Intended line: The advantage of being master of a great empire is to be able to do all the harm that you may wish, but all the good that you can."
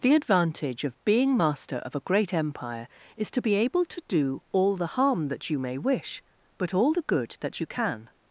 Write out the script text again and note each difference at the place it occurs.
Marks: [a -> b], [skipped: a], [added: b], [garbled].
The advantage of being master of a great empire is to be able to do all the harm that you may wish, but all the good that you can."